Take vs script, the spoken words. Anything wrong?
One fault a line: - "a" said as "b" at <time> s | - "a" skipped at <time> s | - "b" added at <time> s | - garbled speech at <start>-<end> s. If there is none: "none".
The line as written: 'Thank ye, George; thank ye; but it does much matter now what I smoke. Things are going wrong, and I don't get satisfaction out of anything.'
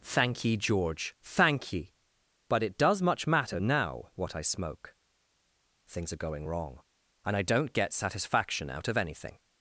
none